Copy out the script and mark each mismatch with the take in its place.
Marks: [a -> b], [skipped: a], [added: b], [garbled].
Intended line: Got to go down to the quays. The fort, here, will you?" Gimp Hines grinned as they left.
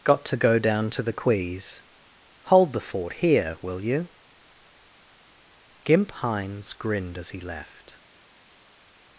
Got to go down to the quays. [added: Hold] The fort, here, will you?" Gimp Hines grinned as [they -> he] left.